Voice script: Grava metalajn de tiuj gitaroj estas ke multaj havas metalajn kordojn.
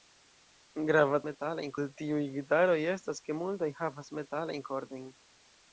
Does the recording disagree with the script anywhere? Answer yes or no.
no